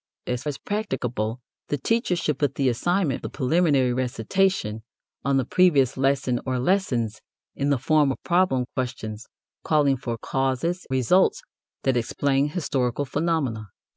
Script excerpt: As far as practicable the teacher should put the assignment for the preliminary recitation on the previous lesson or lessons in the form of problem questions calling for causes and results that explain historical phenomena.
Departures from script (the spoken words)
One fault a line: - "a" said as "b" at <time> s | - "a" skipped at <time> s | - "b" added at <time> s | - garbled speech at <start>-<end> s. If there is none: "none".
- "far" skipped at 0.4 s
- "for" skipped at 3.2 s
- "and" skipped at 10.9 s